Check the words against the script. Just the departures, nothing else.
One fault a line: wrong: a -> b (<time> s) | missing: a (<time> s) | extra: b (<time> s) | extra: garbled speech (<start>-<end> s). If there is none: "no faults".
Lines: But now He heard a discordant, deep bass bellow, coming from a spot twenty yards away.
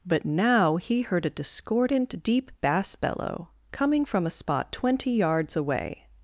no faults